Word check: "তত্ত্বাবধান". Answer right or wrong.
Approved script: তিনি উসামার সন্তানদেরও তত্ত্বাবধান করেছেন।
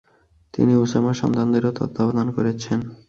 right